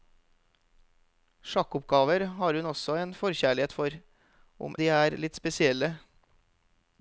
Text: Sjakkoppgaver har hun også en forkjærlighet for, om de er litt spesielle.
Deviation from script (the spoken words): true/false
false